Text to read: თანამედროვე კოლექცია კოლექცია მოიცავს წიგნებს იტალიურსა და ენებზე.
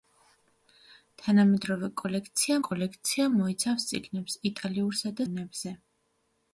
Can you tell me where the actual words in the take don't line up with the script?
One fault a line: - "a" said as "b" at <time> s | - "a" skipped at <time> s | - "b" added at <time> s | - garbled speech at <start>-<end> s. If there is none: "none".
none